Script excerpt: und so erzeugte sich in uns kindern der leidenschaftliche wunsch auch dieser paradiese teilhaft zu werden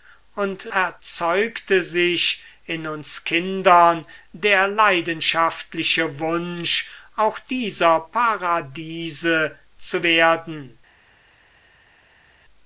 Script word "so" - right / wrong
wrong